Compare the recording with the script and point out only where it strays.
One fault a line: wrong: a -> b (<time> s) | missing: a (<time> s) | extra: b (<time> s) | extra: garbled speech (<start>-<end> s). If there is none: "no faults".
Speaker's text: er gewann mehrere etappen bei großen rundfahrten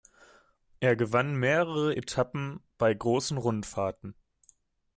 no faults